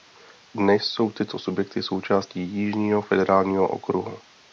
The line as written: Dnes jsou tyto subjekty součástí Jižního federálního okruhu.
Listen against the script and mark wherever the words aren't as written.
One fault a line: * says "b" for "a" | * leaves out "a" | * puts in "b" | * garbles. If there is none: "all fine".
all fine